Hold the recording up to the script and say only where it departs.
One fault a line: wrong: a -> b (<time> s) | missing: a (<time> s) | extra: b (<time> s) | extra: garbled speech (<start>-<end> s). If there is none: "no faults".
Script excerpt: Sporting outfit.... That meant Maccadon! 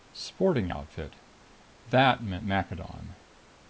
no faults